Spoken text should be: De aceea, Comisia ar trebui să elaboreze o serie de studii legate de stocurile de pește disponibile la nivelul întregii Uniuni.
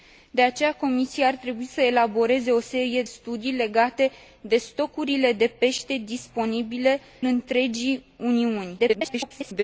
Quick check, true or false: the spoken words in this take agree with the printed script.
false